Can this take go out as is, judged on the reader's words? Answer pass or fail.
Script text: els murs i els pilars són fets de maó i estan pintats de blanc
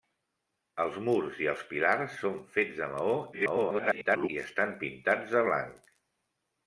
fail